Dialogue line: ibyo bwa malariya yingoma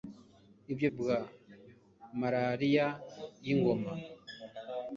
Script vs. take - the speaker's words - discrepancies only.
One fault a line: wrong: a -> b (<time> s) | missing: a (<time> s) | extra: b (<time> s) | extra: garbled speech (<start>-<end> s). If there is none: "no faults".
no faults